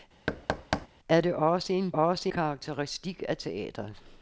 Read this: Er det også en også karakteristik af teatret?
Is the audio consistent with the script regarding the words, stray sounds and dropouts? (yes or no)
no